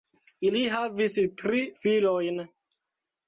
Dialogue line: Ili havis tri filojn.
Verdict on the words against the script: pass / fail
pass